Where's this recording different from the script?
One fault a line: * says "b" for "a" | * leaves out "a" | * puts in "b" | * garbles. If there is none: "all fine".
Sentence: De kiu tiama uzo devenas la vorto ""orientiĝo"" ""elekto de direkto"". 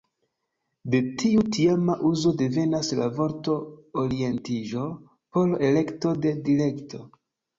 * says "tiu" for "kiu"
* puts in "por"